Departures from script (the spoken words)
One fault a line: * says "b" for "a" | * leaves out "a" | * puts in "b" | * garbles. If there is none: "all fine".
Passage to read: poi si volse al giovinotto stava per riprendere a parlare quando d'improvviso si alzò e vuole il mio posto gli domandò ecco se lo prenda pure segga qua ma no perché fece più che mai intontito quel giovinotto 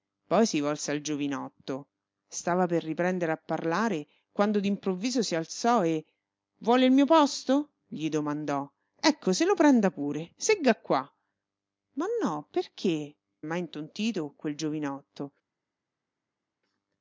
* leaves out "fece più che"